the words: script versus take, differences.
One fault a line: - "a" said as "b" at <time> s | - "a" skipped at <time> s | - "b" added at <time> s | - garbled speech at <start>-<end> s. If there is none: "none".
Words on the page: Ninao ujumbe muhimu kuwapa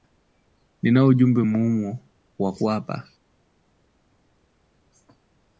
- "wa" added at 2.4 s